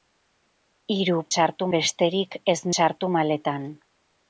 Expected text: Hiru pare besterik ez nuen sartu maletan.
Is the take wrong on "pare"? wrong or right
wrong